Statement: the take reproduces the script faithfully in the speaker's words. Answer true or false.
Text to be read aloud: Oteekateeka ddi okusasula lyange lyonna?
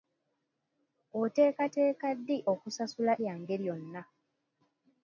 true